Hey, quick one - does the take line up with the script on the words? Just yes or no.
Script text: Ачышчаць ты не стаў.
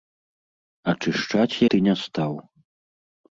yes